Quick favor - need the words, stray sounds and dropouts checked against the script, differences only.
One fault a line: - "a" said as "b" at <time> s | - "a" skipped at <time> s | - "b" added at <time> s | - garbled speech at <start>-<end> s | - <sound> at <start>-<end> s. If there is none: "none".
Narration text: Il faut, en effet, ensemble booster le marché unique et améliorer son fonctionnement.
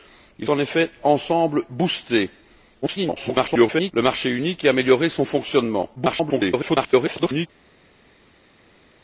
- "faut" skipped at 0.5 s
- garbled speech at 2.8-3.9 s
- garbled speech at 5.9-7.5 s